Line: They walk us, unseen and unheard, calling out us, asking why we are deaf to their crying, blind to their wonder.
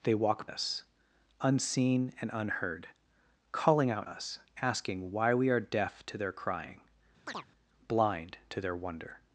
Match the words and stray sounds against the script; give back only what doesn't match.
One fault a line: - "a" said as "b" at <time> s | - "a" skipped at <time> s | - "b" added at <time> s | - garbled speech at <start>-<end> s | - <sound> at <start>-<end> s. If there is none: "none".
- chirp at 7.3-7.5 s